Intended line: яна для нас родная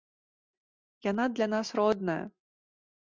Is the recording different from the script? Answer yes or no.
no